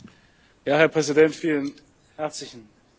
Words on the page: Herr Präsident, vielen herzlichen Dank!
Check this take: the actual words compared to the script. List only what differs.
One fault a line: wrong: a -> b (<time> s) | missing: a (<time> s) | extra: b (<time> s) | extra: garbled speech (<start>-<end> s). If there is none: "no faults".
no faults